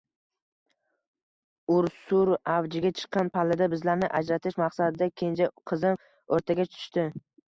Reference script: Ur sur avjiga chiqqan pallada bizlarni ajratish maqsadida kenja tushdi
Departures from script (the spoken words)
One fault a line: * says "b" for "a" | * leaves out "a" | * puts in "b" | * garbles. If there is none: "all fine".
* puts in "qizim o`rtaga"